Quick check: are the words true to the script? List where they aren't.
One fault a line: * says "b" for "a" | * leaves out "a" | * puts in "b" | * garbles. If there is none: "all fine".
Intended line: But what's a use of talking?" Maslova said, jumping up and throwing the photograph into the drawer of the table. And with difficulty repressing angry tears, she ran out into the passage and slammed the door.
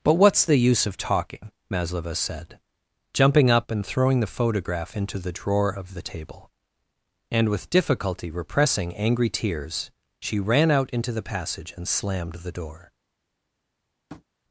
* says "the" for "a"